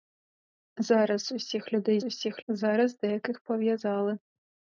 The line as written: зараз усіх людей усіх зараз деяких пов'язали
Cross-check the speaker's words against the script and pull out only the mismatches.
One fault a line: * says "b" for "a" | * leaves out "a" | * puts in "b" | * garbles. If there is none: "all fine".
all fine